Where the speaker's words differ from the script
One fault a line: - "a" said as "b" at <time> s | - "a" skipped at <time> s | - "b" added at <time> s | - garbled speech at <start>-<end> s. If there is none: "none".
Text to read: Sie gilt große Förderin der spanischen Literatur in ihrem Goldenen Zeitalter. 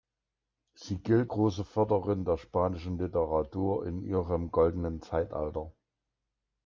none